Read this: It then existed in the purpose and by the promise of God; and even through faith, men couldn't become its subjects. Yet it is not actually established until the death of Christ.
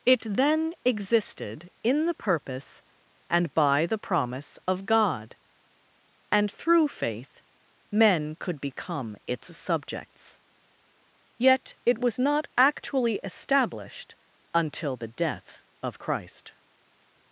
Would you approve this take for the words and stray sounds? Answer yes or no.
no